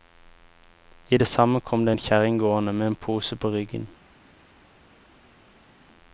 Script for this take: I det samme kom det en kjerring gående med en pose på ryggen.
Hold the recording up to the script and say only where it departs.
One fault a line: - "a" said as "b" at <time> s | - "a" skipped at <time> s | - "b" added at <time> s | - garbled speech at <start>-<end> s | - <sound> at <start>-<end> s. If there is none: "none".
none